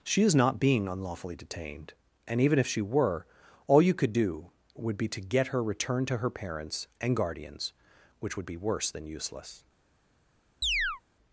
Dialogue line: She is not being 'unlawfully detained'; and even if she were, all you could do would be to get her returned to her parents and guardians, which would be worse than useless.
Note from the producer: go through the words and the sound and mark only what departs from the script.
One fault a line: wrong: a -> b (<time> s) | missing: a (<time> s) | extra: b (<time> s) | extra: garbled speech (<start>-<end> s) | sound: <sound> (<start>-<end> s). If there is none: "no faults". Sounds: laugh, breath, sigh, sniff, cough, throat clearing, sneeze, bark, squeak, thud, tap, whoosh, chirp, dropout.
sound: chirp (10.6-11.0 s)